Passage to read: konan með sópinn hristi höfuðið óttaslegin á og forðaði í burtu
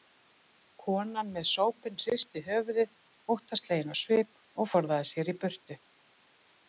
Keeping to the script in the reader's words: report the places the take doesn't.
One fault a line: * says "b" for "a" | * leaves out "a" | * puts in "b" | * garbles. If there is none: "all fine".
* puts in "svip"
* puts in "sér"